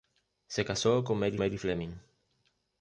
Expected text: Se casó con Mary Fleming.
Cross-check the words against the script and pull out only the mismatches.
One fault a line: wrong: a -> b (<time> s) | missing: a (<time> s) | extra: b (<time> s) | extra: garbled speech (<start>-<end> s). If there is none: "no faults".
extra: Mary (1.4 s)